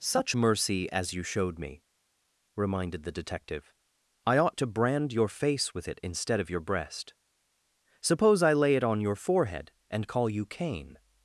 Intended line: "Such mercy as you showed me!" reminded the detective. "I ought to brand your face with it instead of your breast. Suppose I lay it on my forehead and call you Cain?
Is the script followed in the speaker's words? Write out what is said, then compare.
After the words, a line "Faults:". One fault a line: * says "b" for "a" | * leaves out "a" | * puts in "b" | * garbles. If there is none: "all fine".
"Such mercy as you showed me!" reminded the detective. "I ought to brand your face with it instead of your breast. Suppose I lay it on your forehead and call you Cain?
Faults:
* says "your" for "my"